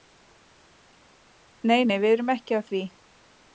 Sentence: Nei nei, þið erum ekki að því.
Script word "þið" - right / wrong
wrong